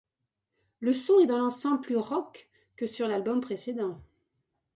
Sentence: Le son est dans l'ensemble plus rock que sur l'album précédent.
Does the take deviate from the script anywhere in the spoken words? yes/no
no